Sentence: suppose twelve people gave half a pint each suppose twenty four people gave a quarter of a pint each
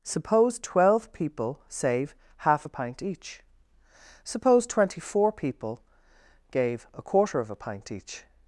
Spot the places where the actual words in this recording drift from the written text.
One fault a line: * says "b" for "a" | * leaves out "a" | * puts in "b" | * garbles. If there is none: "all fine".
* says "save" for "gave"